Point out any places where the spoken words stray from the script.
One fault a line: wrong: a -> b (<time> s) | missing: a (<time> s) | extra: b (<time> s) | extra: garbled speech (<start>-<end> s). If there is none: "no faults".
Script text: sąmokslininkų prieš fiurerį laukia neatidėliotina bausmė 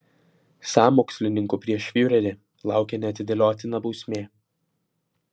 no faults